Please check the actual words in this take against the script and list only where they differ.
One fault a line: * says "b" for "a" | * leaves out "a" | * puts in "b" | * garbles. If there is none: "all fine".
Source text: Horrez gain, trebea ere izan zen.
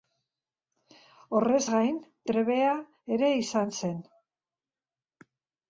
all fine